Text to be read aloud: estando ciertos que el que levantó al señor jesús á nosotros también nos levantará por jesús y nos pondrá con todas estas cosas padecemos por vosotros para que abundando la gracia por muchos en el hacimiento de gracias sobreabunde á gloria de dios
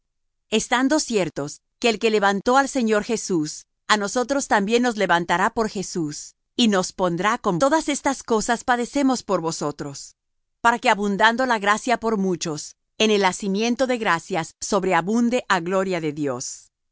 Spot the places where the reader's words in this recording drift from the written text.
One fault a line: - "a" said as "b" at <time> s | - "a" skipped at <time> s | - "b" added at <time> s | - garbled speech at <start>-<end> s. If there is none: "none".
none